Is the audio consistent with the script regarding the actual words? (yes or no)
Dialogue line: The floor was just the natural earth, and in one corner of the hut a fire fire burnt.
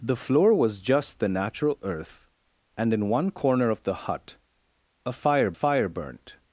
yes